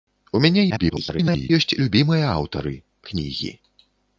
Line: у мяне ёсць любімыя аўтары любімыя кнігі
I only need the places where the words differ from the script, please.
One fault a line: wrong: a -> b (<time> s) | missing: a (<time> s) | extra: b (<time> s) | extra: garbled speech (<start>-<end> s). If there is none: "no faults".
extra: garbled speech (0.7-1.5 s)
missing: любімыя (2.7 s)